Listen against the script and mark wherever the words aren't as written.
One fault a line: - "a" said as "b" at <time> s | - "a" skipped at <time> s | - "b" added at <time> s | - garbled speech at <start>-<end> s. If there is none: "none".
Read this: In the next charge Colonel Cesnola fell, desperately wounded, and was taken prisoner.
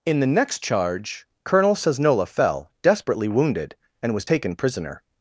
none